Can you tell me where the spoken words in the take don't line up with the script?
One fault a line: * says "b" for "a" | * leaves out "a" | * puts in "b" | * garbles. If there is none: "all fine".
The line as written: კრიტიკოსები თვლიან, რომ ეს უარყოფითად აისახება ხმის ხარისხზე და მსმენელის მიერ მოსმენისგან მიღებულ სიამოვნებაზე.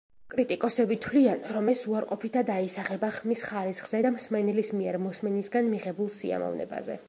all fine